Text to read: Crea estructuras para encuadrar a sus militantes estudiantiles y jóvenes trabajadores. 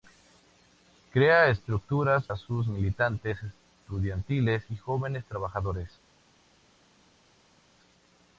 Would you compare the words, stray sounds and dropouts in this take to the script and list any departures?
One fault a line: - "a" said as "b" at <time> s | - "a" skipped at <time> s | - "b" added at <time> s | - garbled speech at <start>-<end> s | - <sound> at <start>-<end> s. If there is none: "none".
- "para encuadrar" skipped at 2.2 s